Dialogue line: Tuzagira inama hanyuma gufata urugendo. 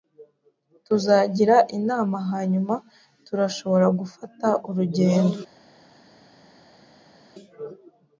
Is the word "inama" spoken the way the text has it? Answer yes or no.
yes